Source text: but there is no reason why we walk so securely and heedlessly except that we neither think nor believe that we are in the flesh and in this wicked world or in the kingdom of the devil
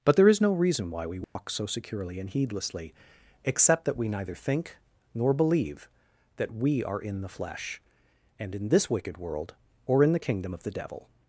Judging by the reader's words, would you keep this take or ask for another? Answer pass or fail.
pass